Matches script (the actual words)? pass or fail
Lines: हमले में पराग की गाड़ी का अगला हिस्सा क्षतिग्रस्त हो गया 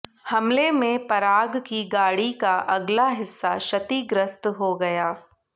pass